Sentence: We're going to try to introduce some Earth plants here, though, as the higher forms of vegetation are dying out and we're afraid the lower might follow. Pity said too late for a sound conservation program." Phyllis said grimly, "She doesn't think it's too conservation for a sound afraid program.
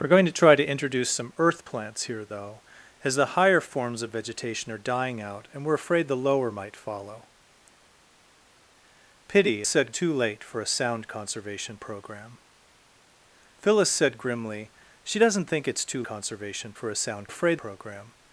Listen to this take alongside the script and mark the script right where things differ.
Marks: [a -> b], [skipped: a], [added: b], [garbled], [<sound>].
We're going to try to introduce some Earth plants here, though, as the higher forms of vegetation are dying out and we're afraid the lower might follow. Pity said too late for a sound conservation program." Phyllis said grimly, "She doesn't think it's too conservation for a sound afraid program.